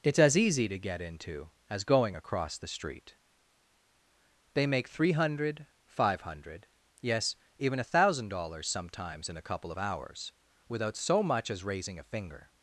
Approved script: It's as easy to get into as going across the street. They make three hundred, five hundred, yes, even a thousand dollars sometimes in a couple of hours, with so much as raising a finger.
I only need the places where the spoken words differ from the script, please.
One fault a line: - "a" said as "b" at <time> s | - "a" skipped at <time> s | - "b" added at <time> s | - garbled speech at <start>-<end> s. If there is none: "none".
- "with" said as "without" at 10.7 s